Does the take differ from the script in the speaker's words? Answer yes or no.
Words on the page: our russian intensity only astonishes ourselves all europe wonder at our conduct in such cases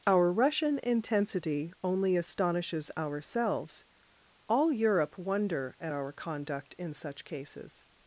no